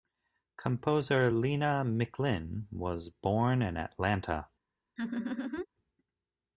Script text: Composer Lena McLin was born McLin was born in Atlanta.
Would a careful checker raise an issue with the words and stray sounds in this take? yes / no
yes